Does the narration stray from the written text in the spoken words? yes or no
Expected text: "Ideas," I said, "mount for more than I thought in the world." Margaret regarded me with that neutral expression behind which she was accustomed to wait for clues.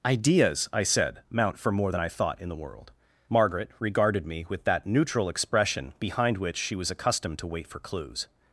no